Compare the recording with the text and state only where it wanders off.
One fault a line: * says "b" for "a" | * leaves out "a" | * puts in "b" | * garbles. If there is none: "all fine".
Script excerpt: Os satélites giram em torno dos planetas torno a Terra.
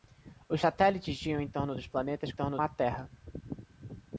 all fine